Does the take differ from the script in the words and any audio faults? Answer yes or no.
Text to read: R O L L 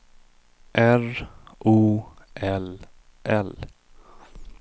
no